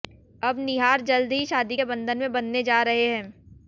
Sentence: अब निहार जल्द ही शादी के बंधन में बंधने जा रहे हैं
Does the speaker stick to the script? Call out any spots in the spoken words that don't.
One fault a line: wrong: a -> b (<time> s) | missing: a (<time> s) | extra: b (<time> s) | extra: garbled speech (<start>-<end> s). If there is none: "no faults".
no faults